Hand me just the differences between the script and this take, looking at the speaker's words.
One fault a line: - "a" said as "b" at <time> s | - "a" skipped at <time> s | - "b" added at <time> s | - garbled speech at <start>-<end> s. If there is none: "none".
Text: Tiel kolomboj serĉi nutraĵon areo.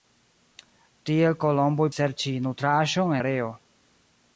none